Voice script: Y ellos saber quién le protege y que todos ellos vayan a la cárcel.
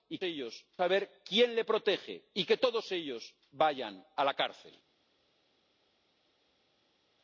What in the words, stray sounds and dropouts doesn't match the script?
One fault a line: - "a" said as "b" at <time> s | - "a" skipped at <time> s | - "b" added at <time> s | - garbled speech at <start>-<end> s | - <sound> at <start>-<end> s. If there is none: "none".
none